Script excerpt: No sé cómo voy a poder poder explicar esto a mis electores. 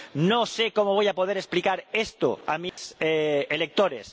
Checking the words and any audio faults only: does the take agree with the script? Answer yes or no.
no